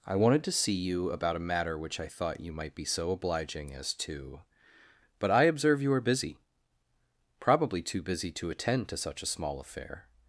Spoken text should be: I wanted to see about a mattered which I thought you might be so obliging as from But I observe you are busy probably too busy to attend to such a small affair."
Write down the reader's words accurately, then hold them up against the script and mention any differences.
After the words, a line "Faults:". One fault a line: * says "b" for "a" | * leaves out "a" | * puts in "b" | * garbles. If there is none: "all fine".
I wanted to see you about a matter which I thought you might be so obliging as to But I observe you are busy probably too busy to attend to such a small affair."
Faults:
* puts in "you"
* says "matter" for "mattered"
* says "to" for "from"